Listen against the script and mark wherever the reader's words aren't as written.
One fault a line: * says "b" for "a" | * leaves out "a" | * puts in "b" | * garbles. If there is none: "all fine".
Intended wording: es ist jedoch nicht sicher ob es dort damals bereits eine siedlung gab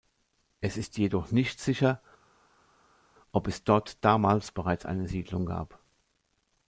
all fine